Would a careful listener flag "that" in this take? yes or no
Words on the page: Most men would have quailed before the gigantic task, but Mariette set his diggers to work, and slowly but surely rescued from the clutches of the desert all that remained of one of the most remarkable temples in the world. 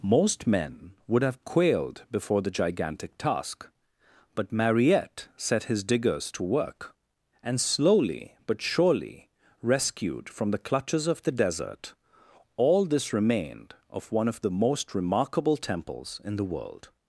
yes